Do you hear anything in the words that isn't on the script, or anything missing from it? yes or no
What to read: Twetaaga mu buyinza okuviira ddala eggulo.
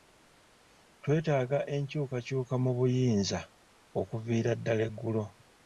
yes